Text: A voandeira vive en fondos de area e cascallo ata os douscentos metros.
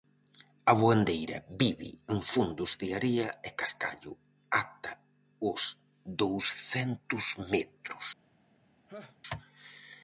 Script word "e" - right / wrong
right